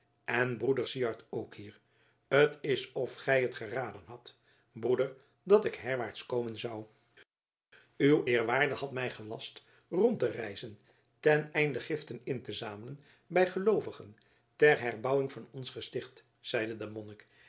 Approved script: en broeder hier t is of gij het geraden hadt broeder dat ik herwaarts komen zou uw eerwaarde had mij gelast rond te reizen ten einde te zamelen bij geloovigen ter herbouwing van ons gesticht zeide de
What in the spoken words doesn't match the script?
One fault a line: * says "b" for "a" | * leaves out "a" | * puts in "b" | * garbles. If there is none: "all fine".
* puts in "syard ook"
* puts in "giften in"